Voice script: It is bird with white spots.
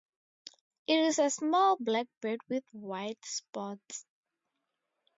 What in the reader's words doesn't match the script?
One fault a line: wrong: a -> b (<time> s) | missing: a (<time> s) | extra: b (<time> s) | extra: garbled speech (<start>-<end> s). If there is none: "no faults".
extra: a small black (1.2 s)